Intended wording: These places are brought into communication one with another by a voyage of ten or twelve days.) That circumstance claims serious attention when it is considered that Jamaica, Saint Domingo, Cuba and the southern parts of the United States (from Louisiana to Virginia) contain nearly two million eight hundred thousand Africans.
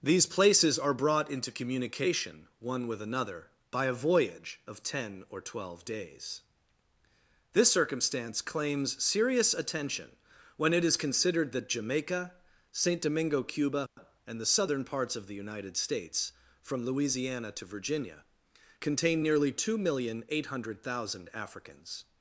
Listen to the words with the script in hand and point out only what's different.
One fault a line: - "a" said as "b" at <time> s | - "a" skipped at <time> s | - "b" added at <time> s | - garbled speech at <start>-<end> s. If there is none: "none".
- "That" said as "This" at 7.5 s